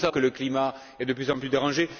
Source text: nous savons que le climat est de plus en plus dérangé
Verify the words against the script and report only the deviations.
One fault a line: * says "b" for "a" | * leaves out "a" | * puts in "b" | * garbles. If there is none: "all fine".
* leaves out "savons"